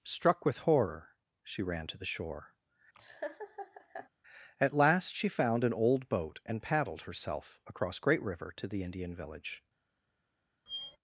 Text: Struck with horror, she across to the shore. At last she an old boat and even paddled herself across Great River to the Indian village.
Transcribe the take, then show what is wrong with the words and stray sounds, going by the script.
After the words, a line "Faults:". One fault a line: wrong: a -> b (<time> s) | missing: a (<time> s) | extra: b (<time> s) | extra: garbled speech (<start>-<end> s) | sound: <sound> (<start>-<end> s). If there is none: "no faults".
Struck with horror, she ran to the shore. At last she found an old boat and paddled herself across Great River to the Indian village.
Faults:
wrong: across -> ran (1.6 s)
sound: laugh (2.9-4.1 s)
extra: found (5.3 s)
missing: even (6.6 s)
sound: squeak (10.7-11.0 s)